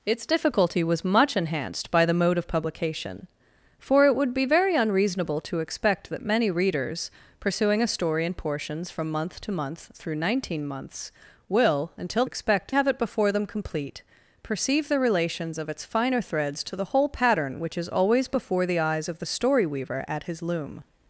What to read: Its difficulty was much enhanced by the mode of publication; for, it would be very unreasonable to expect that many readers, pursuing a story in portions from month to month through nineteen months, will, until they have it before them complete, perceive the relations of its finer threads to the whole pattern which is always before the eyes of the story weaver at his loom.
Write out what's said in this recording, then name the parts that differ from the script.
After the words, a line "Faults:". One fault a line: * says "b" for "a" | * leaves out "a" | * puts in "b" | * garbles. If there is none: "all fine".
Its difficulty was much enhanced by the mode of publication; for, it would be very unreasonable to expect that many readers, pursuing a story in portions from month to month through nineteen months, will, until expect have it before them complete, perceive the relations of its finer threads to the whole pattern which is always before the eyes of the story weaver at his loom.
Faults:
* says "expect" for "they"